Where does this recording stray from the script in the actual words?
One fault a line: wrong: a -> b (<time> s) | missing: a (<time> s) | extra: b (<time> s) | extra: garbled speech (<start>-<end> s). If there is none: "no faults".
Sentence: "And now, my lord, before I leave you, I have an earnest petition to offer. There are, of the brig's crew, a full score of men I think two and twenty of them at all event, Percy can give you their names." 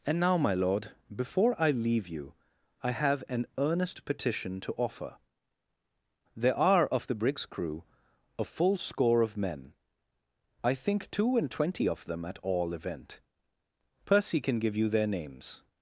no faults